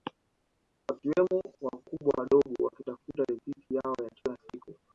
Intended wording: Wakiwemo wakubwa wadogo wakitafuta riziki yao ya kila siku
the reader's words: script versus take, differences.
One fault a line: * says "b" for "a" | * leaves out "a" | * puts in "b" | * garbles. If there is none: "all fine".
all fine